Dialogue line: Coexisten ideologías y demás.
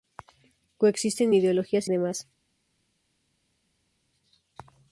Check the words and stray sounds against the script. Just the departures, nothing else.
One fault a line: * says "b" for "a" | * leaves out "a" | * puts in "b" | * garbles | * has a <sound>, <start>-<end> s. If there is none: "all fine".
all fine